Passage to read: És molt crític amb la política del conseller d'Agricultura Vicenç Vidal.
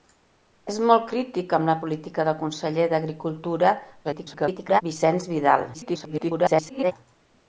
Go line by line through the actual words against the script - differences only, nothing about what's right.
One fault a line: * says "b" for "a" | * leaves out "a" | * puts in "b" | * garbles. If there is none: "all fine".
* garbles
* garbles